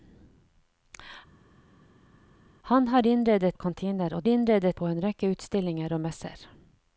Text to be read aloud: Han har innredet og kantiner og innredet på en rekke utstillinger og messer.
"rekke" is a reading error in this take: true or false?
false